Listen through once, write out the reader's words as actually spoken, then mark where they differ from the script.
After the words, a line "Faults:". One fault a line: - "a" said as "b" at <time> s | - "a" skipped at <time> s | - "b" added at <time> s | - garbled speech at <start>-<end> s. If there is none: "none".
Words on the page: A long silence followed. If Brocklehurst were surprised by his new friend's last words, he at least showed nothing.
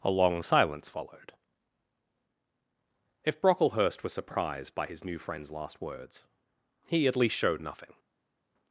A long silence followed. If Brocklehurst was surprised by his new friend's last words, he at least showed nothing.
Faults:
- "were" said as "was" at 4.0 s